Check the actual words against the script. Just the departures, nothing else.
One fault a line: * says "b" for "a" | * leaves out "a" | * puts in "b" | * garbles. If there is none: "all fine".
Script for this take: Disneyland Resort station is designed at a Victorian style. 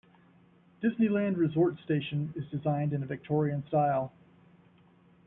* says "in" for "at"